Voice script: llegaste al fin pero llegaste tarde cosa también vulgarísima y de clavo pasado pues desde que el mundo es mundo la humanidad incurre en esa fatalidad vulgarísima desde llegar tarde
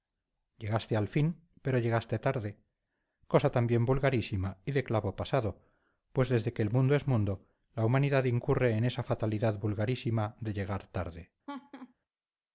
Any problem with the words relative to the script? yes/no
yes